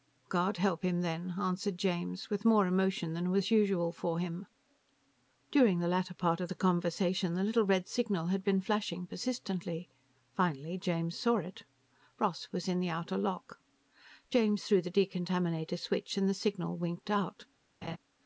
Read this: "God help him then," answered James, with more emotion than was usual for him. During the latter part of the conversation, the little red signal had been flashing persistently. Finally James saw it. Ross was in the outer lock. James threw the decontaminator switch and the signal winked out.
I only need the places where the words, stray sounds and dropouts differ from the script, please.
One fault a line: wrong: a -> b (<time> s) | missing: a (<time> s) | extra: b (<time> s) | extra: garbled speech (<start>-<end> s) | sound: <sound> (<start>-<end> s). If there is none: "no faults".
sound: laugh (17.8-18.0 s)